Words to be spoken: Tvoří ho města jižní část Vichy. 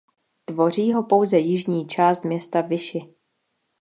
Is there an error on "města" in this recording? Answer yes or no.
yes